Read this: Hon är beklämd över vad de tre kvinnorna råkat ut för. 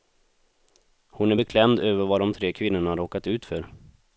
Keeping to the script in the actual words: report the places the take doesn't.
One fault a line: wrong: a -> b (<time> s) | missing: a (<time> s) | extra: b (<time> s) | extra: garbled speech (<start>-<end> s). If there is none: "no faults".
no faults